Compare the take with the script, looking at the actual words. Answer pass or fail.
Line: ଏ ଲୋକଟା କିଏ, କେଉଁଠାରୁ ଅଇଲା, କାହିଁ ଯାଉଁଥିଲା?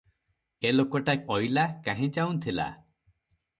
fail